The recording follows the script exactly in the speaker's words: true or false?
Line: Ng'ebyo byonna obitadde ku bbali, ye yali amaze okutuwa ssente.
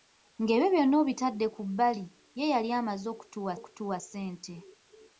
false